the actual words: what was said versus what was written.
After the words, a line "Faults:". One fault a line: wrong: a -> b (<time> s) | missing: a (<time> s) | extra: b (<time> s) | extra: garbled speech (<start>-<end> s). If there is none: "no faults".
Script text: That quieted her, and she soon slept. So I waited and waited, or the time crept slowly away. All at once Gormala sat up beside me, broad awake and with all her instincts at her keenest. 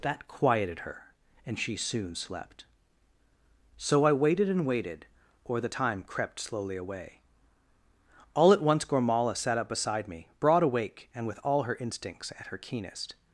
That quieted her, and she soon slept. So I waited and waited, or the time crept slowly away. All at once Gormala sat up beside me, broad awake and with all her instincts at her keenest.
Faults:
no faults